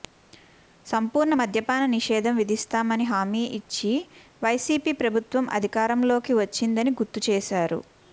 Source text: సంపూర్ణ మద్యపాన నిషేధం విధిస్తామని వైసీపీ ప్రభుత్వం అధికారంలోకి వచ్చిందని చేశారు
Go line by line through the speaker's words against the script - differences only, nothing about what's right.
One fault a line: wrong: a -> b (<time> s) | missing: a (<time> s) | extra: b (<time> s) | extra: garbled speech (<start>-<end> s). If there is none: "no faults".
extra: హామీ ఇచ్చి (3.0 s)
extra: గుర్తు (7.0 s)